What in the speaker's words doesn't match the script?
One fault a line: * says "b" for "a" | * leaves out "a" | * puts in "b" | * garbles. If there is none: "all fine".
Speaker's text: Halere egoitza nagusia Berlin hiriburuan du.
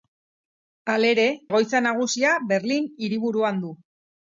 all fine